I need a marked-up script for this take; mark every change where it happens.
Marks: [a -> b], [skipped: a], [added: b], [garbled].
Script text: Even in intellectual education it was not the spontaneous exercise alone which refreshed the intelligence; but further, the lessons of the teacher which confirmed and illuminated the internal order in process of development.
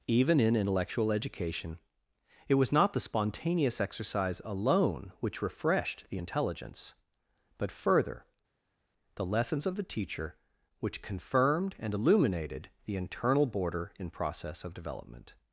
Even in intellectual education it was not the spontaneous exercise alone which refreshed the intelligence; but further, the lessons of the teacher which confirmed and illuminated the internal [order -> border] in process of development.